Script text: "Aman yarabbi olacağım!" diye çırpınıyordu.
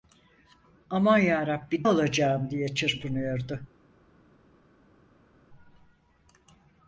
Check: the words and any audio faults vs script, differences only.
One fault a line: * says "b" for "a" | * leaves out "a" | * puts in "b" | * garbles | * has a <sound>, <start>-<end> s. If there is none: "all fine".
all fine